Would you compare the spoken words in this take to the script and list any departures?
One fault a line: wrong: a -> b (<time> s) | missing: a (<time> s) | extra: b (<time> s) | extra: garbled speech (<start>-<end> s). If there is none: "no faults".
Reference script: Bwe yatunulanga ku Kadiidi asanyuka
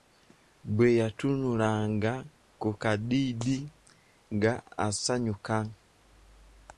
extra: nga (4.3 s)